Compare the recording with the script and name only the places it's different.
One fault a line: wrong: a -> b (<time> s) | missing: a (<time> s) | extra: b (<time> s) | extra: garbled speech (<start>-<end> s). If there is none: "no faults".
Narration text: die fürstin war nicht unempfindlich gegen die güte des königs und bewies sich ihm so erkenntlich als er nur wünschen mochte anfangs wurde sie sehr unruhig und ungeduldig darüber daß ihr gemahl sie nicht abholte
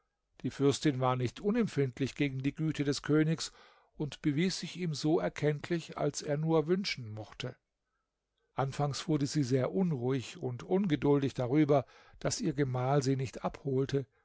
no faults